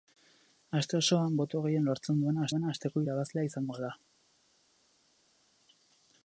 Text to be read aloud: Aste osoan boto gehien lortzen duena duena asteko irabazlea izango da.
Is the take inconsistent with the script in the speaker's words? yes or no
no